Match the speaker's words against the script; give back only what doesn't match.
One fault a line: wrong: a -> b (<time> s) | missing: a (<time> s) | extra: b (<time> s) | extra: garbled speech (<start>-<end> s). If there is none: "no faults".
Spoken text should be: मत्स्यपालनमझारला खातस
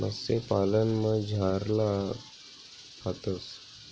no faults